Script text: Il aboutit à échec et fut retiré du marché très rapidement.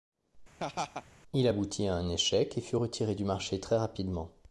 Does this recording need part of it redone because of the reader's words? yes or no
yes